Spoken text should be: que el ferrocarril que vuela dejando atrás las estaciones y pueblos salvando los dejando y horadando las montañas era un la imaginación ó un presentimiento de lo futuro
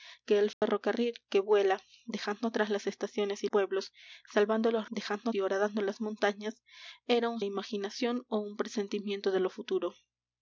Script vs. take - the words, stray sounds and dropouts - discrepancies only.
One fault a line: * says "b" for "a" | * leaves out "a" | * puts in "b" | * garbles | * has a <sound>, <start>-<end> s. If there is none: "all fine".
* has a dropout, 0.5-0.6 s